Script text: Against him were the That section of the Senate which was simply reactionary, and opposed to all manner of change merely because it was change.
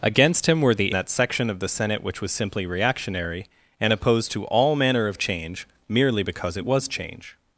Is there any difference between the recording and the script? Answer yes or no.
no